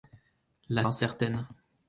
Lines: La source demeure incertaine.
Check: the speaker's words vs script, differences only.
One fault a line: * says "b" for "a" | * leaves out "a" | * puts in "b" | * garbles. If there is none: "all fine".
* leaves out "source demeure"